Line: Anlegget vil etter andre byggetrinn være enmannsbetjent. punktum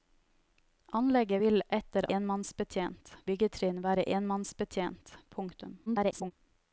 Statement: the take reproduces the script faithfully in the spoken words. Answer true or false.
false